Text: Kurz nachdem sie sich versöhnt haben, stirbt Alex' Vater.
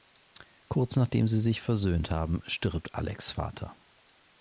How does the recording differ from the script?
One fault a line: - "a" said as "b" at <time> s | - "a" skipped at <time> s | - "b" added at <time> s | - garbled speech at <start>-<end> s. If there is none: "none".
none